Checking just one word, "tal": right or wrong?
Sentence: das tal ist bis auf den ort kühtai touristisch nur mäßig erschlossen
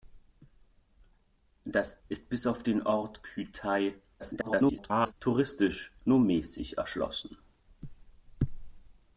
wrong